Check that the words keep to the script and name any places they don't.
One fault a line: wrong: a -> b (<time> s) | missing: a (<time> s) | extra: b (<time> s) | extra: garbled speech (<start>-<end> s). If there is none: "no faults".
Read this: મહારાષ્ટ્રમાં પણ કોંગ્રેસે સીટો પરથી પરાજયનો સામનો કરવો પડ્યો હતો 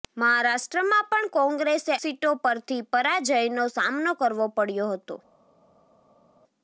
no faults